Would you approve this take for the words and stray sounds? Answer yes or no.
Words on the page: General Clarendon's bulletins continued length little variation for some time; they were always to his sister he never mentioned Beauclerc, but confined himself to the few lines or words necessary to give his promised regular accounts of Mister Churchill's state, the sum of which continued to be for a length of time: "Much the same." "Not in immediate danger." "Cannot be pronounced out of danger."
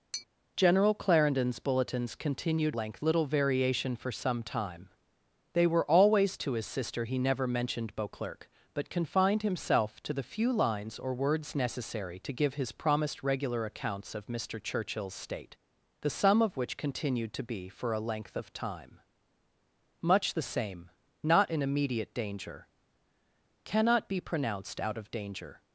no